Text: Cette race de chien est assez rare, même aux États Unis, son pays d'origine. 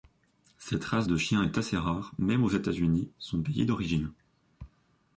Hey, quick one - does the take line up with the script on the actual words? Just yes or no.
yes